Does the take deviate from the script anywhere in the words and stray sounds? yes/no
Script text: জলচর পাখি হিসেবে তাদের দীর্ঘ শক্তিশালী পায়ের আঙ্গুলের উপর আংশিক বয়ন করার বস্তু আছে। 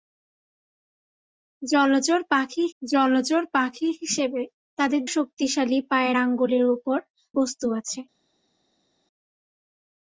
yes